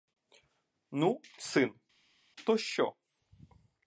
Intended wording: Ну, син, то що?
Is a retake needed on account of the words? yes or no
no